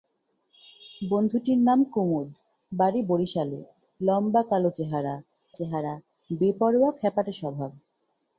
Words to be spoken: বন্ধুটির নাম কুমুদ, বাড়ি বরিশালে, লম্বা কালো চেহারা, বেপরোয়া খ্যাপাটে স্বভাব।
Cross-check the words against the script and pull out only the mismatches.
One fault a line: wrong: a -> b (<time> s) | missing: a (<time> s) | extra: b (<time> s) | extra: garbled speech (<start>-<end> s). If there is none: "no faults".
extra: চেহারা (5.6 s)